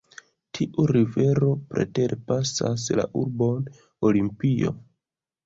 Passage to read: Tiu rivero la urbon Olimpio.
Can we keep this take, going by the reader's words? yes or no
no